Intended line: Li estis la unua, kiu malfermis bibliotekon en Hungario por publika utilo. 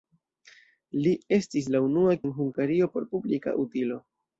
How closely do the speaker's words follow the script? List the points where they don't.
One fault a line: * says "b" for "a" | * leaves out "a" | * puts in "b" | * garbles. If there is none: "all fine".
* leaves out "kiu malfermis bibliotekon"